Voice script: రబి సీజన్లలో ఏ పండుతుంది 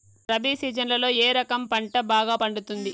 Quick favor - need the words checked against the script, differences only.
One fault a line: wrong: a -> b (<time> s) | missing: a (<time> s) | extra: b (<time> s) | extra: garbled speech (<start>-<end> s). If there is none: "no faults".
extra: రకం పంట బాగా (1.3 s)